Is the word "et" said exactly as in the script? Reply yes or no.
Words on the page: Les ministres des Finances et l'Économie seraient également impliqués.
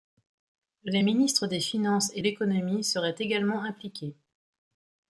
yes